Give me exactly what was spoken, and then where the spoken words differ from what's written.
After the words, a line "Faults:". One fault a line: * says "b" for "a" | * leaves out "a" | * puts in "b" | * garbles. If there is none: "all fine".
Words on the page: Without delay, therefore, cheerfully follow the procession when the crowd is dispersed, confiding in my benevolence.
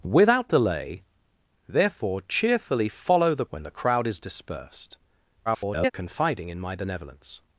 Without delay, therefore, cheerfully follow the when the crowd is dispersed, [garbled] confiding in my benevolence.
Faults:
* leaves out "procession"
* garbles